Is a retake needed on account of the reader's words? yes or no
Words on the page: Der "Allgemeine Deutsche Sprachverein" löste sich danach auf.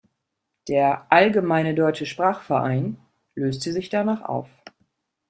no